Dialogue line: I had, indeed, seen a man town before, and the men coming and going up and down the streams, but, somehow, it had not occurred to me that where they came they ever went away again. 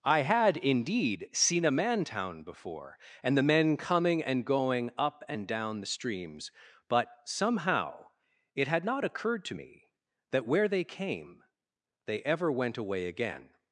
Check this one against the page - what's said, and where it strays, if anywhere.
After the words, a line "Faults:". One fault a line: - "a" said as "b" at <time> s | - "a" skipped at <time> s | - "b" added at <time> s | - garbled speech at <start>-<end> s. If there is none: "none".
I had, indeed, seen a man town before, and the men coming and going up and down the streams, but, somehow, it had not occurred to me that where they came they ever went away again.
Faults:
none